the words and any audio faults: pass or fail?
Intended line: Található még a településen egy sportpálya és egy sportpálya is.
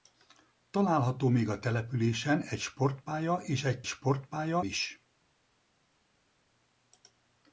pass